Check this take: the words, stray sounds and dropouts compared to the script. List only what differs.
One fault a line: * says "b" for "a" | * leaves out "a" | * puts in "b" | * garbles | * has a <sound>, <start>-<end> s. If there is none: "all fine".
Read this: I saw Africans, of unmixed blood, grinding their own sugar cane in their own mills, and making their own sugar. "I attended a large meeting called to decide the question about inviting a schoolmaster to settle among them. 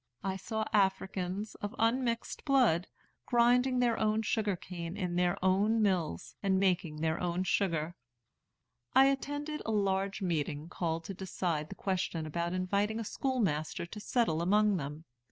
all fine